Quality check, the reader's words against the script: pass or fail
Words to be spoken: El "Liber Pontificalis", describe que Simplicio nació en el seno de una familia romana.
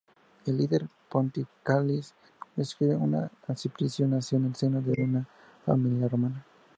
pass